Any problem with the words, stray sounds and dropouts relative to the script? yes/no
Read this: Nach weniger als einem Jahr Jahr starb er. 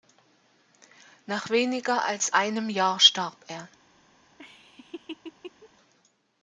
yes